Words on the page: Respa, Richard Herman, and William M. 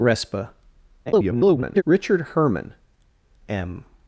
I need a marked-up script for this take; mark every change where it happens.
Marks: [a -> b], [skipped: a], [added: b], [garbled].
Respa, [garbled] Richard Herman, [skipped: and William] M.